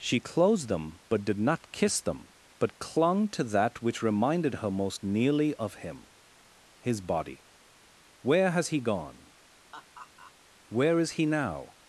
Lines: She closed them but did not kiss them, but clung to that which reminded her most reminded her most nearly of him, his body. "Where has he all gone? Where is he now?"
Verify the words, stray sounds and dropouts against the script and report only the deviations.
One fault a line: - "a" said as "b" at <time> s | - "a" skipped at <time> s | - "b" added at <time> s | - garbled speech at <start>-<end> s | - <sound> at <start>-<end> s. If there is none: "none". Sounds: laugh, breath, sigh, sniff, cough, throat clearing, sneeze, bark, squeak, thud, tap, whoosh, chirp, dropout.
- "reminded her most" skipped at 5.0 s
- "all" skipped at 8.8 s
- laugh at 9.7-10.3 s